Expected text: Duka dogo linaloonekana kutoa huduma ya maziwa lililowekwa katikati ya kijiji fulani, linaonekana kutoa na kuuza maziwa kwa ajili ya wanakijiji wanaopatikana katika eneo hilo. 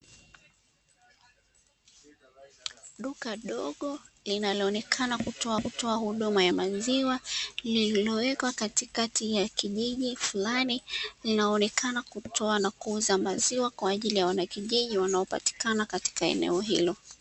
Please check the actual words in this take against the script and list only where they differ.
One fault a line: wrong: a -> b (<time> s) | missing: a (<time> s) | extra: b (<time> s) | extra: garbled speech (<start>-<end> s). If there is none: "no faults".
extra: kutoa (5.6 s)